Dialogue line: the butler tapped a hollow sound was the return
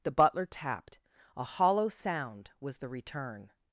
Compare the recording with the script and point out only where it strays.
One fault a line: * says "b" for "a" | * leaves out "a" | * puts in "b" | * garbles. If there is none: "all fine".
all fine